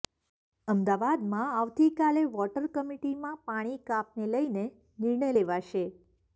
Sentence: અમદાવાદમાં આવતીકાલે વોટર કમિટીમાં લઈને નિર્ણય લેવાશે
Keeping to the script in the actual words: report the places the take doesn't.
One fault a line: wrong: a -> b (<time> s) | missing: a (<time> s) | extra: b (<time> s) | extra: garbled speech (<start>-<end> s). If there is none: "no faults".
extra: પાણી કાપને (3.5 s)